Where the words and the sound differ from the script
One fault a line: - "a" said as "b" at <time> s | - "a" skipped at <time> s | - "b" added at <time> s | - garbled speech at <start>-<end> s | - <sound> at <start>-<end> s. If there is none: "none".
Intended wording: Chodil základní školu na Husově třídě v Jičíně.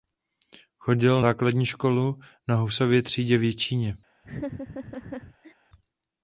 - laugh at 4.2-5.5 s